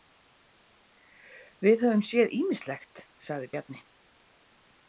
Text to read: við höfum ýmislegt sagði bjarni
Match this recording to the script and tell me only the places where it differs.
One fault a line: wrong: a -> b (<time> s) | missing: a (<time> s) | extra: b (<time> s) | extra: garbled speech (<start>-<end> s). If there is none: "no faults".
extra: séð (2.1 s)